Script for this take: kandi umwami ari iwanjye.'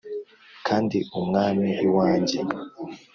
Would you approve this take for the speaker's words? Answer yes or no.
no